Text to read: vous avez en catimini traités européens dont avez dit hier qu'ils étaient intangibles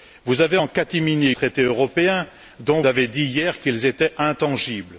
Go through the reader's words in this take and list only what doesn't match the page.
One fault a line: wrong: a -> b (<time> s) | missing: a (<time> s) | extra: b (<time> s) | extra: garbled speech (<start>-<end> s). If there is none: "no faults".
no faults